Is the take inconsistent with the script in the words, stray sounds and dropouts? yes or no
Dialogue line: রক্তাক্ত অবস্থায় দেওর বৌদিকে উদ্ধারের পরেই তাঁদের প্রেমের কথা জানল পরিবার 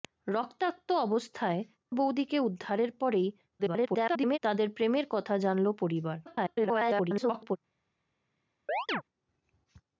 yes